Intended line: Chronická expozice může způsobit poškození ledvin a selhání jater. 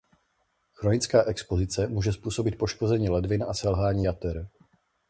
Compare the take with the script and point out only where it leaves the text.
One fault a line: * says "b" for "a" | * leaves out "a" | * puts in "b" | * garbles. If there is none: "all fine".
all fine